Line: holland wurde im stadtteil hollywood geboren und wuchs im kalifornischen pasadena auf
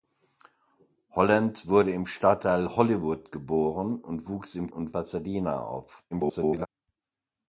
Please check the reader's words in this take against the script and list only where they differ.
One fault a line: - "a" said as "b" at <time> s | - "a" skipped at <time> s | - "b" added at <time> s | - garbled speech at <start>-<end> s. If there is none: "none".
- "kalifornischen" said as "und" at 4.7 s
- garbled speech at 6.1-6.7 s